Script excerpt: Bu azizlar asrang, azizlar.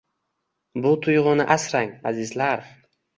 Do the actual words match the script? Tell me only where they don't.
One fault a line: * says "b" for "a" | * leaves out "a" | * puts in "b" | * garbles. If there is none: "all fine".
* says "tuyg‘uni" for "azizlar"